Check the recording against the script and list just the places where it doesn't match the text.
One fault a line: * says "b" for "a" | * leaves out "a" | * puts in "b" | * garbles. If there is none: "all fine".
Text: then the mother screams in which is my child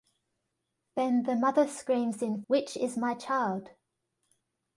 all fine